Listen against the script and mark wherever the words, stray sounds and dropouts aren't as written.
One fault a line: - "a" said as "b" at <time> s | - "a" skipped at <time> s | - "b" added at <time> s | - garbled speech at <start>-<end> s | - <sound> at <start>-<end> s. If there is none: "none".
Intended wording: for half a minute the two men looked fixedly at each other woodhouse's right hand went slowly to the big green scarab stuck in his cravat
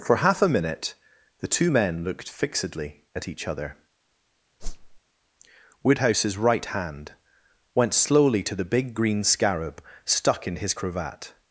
- whoosh at 4.6-5.0 s